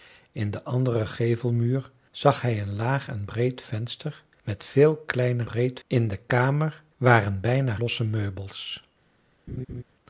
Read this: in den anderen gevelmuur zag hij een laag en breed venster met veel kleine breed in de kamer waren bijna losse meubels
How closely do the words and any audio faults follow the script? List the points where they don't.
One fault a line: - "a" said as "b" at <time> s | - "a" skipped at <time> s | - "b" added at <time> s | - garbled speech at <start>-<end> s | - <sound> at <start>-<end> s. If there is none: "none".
- laugh at 9.5-9.8 s